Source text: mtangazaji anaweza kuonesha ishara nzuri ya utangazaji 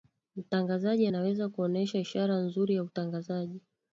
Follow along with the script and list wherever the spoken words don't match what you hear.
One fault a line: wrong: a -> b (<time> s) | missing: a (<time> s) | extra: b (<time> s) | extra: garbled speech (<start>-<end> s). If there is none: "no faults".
no faults